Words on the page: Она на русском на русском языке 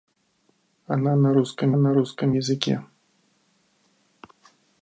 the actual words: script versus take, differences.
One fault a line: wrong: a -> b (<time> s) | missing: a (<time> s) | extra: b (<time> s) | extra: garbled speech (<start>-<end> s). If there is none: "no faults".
no faults